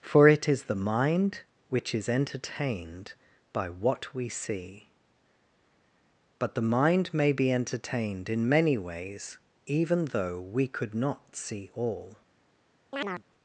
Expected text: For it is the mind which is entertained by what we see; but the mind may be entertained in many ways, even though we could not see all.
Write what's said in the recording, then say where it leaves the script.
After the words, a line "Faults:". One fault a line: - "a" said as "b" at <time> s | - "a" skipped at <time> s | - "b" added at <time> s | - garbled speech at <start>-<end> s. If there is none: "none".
For it is the mind which is entertained by what we see; but the mind may be entertained in many ways, even though we could not see all.
Faults:
none